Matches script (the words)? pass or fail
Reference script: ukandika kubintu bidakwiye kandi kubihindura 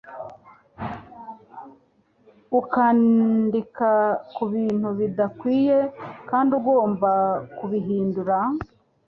fail